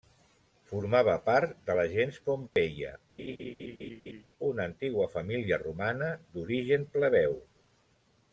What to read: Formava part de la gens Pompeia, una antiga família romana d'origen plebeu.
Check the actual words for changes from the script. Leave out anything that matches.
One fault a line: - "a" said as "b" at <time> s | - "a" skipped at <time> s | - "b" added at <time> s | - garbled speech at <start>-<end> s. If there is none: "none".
none